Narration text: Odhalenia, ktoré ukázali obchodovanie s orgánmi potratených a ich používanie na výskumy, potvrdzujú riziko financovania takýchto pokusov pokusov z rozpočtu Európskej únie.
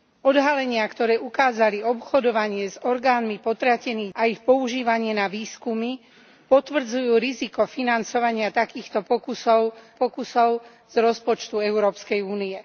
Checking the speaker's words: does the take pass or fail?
pass